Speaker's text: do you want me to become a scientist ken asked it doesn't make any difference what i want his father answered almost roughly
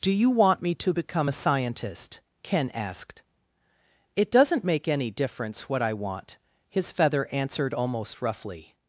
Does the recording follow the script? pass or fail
fail